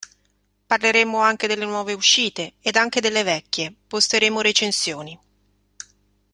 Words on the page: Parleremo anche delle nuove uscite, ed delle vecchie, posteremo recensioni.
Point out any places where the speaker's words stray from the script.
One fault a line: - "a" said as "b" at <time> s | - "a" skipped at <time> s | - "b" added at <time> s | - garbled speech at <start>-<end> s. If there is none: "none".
- "anche" added at 2.8 s